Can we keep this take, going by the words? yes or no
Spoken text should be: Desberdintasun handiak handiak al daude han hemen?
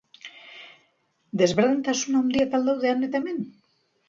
no